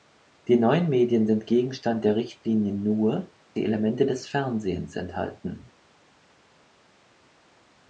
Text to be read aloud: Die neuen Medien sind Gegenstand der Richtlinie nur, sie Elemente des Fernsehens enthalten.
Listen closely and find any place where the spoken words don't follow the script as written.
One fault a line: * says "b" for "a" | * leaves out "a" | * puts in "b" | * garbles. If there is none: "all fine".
all fine